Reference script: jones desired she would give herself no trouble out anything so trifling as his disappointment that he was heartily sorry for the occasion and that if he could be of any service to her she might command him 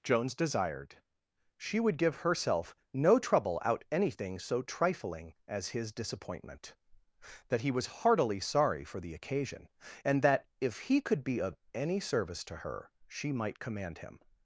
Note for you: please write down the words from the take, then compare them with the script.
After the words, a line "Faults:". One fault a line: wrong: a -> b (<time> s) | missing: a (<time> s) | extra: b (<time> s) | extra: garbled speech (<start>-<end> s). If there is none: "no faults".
jones desired she would give herself no trouble out anything so trifling as his disappointment that he was heartily sorry for the occasion and that if he could be of any service to her she might command him
Faults:
no faults